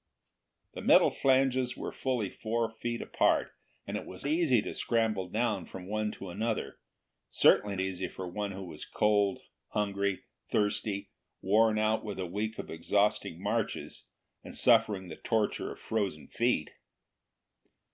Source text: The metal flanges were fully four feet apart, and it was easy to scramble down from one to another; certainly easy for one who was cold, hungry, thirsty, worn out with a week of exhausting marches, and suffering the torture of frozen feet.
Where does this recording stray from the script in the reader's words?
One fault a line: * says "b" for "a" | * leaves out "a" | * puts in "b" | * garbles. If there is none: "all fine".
all fine